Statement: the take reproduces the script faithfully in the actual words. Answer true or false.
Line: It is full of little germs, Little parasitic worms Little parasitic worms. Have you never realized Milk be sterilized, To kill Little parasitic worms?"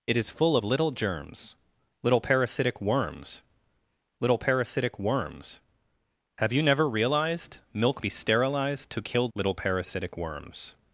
true